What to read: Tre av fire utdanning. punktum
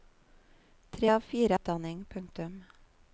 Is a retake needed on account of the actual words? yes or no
no